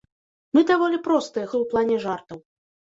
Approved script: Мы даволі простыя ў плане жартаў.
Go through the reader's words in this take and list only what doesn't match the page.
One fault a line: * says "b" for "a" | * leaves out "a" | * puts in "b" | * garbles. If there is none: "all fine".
all fine